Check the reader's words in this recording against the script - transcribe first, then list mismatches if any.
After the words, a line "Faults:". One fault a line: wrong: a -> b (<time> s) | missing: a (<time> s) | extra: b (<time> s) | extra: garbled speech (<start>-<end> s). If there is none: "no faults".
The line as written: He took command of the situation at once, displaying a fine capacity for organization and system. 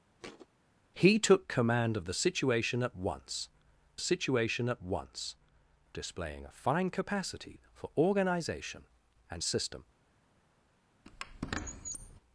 He took command of the situation at once situation at once, displaying a fine capacity for organization and system.
Faults:
extra: situation at once (4.0 s)